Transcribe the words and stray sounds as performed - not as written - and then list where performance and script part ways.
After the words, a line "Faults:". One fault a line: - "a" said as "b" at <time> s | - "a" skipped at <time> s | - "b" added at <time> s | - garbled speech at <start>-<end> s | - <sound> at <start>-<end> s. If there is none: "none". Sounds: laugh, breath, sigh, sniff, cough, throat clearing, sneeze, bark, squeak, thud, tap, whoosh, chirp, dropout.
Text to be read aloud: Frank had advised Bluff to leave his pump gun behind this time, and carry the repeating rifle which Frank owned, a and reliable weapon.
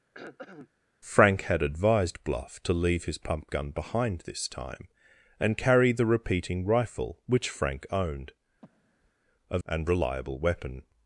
Frank had advised Bluff to leave his pump gun behind this time, and carry the repeating rifle which Frank owned, a and reliable weapon.
Faults:
- throat clearing at 0.1-0.7 s
- breath at 8.6-9.1 s